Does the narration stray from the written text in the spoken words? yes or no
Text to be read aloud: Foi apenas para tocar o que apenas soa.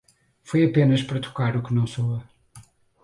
yes